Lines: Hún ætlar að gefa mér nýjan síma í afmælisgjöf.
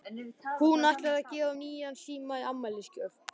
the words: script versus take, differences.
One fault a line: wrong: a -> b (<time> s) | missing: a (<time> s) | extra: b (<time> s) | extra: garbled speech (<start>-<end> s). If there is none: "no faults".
missing: mér (1.5 s)